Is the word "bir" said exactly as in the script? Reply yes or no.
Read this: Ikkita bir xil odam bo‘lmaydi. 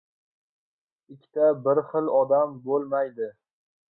yes